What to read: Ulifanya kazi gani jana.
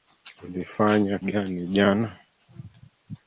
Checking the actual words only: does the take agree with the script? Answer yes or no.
no